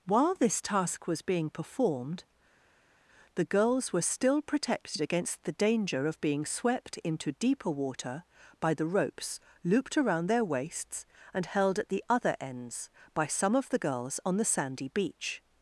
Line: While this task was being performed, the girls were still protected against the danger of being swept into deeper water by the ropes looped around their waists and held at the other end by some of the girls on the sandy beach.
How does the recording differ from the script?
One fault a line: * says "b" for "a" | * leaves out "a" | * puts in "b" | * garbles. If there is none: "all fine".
* says "ends" for "end"